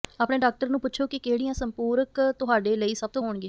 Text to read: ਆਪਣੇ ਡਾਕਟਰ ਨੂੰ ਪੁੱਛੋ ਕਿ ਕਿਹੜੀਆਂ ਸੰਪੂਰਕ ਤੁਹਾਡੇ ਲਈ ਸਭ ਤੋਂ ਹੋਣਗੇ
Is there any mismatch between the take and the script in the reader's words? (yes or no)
no